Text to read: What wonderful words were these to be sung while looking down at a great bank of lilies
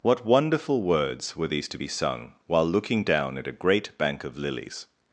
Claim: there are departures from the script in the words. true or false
false